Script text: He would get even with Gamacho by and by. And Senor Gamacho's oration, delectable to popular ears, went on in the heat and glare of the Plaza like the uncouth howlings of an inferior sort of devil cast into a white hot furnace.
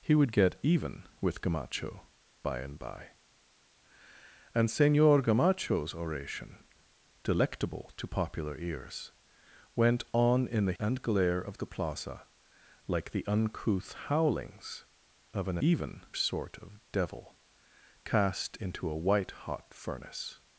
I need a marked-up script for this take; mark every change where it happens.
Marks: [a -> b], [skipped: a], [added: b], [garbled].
He would get even with Gamacho by and by. And Senor Gamacho's oration, delectable to popular ears, went on in the [skipped: heat] and glare of the Plaza like the uncouth howlings of an [inferior -> even] sort of devil cast into a white hot furnace.